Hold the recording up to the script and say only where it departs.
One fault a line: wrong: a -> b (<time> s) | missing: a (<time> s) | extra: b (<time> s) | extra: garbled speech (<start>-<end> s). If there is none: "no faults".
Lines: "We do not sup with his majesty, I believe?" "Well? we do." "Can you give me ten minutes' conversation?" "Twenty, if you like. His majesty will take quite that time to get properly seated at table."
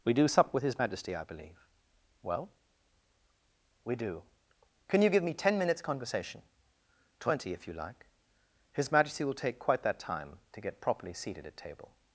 missing: not (0.3 s)